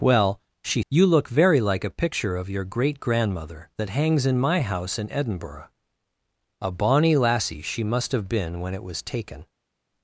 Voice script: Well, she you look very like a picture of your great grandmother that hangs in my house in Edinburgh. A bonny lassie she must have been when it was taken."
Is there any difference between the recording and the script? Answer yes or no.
no